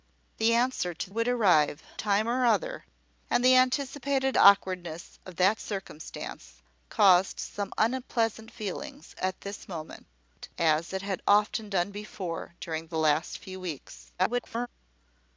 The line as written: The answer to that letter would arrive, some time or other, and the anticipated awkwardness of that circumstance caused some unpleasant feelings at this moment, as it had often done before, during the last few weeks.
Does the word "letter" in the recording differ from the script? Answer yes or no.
yes